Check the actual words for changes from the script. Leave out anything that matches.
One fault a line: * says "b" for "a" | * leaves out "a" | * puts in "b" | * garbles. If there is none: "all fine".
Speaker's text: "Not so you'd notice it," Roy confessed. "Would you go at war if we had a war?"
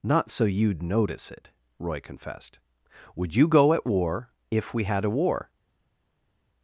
all fine